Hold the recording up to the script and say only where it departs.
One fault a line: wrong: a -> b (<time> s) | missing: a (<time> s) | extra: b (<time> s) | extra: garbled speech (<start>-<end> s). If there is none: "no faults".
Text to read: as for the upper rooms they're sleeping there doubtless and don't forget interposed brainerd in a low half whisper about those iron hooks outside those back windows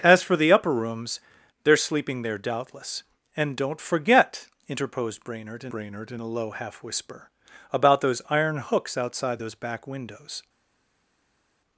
extra: brainerd in (5.7 s)